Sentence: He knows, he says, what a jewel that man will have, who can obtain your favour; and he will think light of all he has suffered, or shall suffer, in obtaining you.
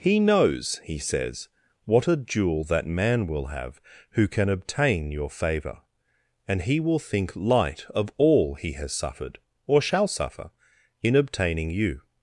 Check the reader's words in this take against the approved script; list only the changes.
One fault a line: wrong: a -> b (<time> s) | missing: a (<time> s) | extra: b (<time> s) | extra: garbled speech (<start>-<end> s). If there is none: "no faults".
no faults